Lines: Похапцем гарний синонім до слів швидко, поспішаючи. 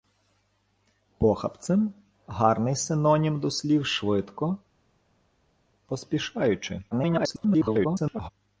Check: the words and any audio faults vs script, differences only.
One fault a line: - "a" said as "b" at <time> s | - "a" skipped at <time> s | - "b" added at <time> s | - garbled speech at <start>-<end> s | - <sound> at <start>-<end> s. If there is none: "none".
- garbled speech at 6.9-8.3 s